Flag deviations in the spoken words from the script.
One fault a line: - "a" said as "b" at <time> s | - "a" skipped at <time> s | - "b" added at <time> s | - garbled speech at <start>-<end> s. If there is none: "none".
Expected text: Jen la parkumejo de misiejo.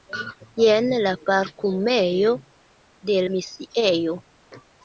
none